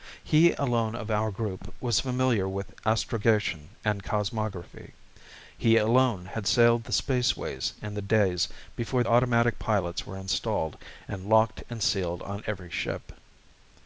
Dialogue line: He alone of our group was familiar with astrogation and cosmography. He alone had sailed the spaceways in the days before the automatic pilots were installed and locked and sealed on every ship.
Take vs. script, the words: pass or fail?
fail